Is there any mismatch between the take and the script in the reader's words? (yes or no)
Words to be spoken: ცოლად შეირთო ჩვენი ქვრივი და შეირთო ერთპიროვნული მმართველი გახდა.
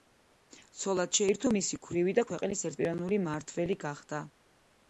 yes